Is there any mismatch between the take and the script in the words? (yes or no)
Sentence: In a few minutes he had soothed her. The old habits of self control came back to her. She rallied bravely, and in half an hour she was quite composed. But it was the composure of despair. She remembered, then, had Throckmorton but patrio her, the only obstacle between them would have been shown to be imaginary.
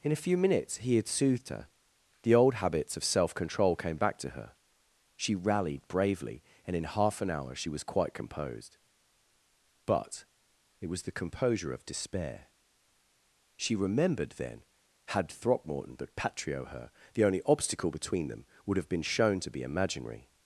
no